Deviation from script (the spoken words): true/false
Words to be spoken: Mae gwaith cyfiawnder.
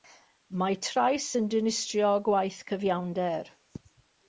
true